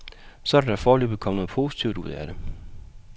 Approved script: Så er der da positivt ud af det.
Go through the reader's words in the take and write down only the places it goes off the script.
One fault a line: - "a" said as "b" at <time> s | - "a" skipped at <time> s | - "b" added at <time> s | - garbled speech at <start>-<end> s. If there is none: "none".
- "foreløbig kommet noget" added at 0.8 s